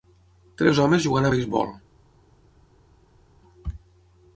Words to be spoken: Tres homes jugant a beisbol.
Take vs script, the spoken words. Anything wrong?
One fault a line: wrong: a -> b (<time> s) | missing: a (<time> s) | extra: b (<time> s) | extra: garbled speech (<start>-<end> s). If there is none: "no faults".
no faults